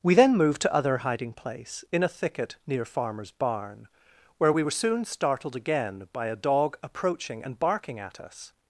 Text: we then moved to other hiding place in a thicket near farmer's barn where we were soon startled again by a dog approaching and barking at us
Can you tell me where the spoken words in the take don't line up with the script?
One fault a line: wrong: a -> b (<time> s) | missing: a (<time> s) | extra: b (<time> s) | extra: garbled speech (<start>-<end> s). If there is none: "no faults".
no faults